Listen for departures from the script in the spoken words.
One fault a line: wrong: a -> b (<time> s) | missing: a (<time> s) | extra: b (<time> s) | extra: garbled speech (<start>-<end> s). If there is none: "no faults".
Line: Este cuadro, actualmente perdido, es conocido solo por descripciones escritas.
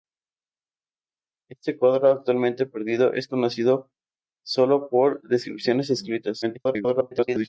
extra: garbled speech (6.4-7.5 s)